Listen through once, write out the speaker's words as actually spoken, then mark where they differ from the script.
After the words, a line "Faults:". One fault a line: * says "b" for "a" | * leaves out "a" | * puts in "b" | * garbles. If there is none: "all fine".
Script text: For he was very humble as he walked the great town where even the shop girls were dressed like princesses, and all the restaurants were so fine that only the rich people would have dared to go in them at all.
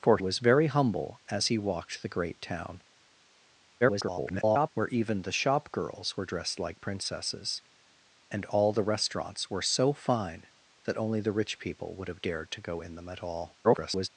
For was very humble as he walked the great town [garbled] where even the shop girls were dressed like princesses, and all the restaurants were so fine that only the rich people would have dared to go in them at all. [garbled]
Faults:
* leaves out "he"
* garbles
* garbles